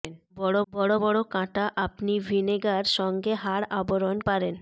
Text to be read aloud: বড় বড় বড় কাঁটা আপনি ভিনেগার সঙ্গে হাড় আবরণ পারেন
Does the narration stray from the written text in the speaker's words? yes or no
no